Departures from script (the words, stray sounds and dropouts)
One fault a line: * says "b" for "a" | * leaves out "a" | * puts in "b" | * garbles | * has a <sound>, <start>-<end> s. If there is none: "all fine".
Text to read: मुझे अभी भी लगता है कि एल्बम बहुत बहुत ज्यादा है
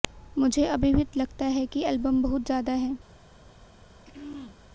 * leaves out "बहुत"
* has a throat clearing, 4.1-4.6 s